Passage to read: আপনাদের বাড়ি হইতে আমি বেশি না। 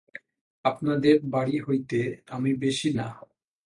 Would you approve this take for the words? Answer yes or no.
yes